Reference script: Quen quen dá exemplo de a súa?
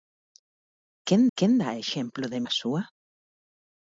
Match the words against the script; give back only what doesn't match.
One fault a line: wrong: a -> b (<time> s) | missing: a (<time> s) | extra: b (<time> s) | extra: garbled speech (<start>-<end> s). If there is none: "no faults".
no faults